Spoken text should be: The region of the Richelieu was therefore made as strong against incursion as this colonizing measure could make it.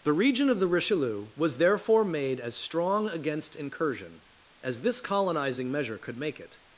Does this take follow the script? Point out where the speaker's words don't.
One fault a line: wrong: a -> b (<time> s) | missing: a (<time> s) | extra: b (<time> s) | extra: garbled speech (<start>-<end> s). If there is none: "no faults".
no faults